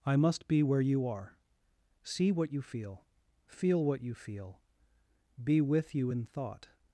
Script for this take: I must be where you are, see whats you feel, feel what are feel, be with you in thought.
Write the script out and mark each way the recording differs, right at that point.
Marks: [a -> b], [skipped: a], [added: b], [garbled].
I must be where you are, see [whats -> what] you feel, feel what [are -> you] feel, be with you in thought.